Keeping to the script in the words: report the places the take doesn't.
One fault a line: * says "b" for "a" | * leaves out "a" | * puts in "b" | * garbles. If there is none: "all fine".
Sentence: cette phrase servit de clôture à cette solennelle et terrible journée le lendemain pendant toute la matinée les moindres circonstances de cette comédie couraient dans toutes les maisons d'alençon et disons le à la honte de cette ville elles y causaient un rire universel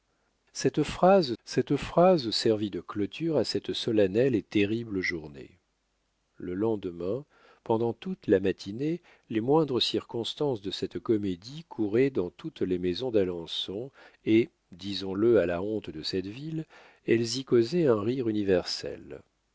* puts in "cette phrase"